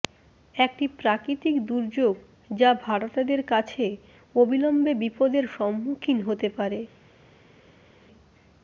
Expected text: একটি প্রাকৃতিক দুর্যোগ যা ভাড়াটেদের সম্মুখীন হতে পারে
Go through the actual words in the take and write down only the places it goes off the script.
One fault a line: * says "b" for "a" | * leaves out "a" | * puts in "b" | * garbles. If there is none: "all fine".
* puts in "কাছে অবিলম্বে বিপদের"